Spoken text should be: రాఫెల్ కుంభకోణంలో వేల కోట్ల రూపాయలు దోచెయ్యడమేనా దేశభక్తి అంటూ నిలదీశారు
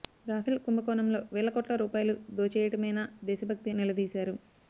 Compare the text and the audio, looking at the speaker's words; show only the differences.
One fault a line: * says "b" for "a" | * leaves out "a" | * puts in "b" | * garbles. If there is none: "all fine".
* leaves out "అంటూ"